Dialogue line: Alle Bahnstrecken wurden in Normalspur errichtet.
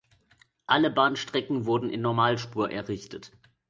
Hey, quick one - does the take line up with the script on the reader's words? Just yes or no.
yes